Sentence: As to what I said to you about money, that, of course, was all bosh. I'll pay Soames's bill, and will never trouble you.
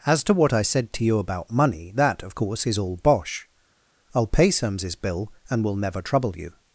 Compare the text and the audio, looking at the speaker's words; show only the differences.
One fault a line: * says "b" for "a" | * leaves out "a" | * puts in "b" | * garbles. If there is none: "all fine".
* says "is" for "was"